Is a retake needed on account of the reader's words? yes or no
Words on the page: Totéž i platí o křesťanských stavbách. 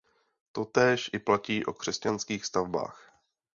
no